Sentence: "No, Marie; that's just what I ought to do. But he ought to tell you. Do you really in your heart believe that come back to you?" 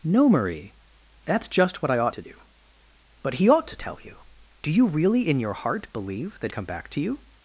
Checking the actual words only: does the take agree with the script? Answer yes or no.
yes